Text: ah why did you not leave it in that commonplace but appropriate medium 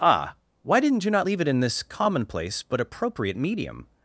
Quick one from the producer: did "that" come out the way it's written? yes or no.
no